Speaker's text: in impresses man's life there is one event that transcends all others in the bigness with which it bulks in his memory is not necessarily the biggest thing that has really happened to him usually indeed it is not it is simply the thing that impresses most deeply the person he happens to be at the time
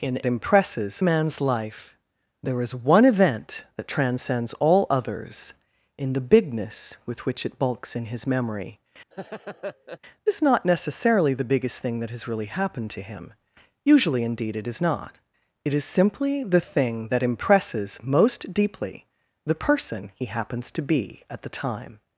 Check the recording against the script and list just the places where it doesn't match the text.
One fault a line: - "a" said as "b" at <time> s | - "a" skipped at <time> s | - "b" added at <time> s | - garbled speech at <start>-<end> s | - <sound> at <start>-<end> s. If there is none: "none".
- laugh at 9.1-10.0 s